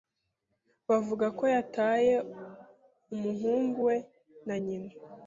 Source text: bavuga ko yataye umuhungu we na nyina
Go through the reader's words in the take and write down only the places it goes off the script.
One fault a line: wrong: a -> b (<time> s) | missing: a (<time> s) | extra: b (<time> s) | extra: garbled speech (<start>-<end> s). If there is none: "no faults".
no faults